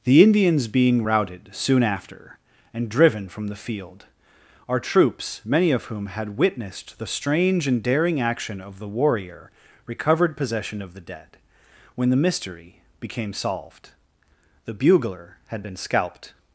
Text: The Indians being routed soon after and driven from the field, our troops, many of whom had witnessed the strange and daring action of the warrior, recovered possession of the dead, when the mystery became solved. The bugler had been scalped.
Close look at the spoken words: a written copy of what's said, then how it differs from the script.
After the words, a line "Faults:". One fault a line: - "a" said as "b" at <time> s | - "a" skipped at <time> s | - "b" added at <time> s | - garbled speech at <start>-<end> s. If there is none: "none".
The Indians being routed soon after and driven from the field, our troops, many of whom had witnessed the strange and daring action of the warrior, recovered possession of the dead, when the mystery became solved. The bugler had been scalped.
Faults:
none